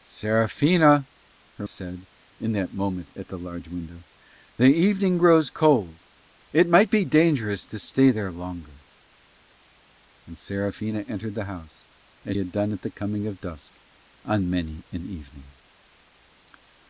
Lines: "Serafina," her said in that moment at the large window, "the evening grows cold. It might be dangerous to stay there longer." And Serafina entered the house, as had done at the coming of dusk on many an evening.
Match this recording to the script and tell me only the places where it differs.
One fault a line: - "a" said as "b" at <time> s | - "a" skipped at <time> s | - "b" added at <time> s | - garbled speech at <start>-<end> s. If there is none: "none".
none